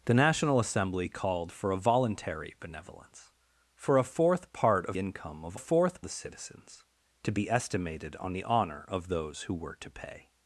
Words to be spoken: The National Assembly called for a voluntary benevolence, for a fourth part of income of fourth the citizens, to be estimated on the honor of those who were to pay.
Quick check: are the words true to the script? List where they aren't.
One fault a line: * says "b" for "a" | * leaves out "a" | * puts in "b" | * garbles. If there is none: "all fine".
all fine